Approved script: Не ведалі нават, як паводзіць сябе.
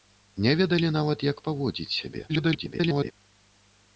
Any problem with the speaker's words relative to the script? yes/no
yes